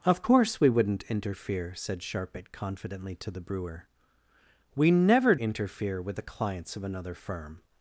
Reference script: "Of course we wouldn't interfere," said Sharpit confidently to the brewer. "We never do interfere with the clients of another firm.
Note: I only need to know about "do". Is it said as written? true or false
false